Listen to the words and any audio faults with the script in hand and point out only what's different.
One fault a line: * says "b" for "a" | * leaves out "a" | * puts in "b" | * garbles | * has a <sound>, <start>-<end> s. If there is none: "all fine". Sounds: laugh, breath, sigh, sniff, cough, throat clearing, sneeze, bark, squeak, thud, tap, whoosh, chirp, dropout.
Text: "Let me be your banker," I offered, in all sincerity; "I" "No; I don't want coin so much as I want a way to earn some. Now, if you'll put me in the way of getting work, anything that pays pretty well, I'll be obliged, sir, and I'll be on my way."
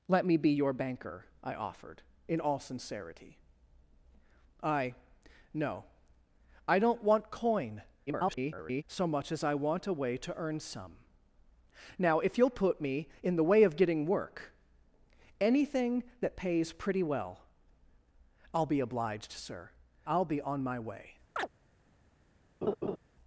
* garbles
* leaves out "and"
* has a chirp, 21.4-21.5 s
* has a laugh, 22.6-23.0 s